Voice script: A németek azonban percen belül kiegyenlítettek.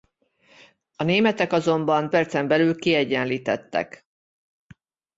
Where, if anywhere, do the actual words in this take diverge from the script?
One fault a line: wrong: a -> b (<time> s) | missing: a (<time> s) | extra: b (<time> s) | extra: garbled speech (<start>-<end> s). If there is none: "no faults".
no faults